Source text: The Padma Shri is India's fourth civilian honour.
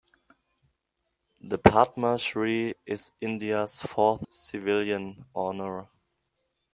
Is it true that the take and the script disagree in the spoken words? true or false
false